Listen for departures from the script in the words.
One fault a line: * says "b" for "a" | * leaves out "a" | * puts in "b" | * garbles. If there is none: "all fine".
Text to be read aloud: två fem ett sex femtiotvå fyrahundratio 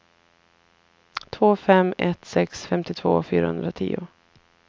all fine